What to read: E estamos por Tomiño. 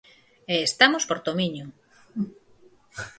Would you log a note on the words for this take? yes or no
no